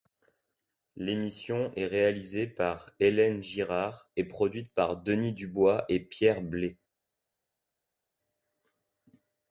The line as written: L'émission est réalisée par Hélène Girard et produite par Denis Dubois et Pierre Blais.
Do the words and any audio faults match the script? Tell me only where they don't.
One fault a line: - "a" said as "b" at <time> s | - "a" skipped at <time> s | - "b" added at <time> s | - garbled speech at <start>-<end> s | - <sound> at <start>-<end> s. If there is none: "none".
none